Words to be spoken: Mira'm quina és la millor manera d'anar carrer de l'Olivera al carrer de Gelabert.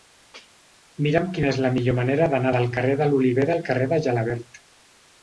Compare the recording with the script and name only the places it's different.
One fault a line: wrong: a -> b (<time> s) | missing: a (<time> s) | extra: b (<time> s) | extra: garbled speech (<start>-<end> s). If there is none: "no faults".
extra: del (2.5 s)